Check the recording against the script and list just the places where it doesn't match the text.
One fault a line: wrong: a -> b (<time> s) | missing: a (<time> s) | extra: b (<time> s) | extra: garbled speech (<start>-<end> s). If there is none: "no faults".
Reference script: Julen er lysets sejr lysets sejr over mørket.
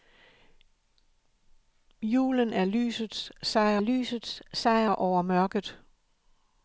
no faults